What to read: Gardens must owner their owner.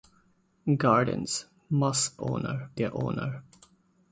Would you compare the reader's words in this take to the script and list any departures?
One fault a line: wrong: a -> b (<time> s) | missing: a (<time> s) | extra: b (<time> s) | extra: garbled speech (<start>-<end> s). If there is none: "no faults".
no faults